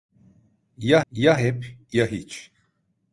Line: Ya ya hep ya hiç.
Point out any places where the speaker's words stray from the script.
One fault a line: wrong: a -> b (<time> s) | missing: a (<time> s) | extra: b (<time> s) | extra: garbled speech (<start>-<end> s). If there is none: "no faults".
no faults